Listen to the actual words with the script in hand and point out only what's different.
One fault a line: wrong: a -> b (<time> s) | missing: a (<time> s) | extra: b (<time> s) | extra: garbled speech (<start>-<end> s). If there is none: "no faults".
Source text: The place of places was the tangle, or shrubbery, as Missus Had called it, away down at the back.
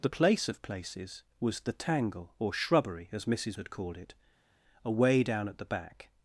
no faults